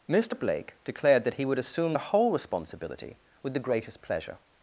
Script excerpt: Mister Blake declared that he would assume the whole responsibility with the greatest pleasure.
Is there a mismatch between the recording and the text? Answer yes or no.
no